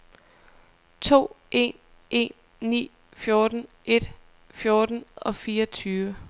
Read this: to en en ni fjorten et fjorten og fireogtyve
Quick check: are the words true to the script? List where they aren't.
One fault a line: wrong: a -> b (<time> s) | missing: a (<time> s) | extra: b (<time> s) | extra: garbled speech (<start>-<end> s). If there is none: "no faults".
no faults